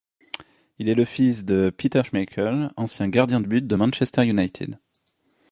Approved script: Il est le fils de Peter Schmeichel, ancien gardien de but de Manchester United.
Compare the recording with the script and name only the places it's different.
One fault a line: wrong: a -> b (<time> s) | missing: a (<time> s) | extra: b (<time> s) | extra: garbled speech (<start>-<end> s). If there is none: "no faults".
no faults